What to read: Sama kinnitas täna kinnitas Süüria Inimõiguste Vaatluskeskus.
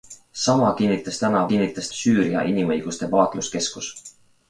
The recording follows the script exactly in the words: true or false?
true